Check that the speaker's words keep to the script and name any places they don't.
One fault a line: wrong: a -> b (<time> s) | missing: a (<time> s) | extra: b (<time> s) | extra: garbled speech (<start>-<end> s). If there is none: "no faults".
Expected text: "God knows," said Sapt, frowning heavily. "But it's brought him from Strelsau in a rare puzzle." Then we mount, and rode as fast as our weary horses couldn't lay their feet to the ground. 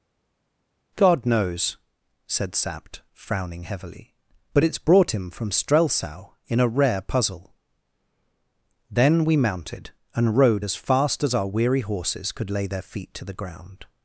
wrong: mount -> mounted (9.4 s)
wrong: couldn't -> could (12.3 s)